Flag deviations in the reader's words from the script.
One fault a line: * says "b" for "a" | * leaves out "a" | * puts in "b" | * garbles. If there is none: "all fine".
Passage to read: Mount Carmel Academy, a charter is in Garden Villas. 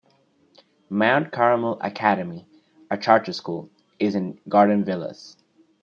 * puts in "school"